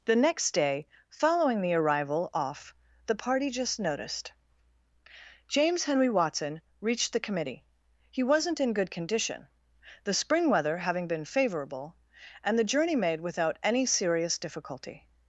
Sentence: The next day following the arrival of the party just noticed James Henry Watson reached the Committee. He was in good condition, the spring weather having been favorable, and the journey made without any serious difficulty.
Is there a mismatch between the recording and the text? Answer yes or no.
yes